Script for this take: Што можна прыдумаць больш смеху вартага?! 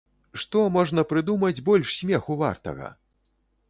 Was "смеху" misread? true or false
false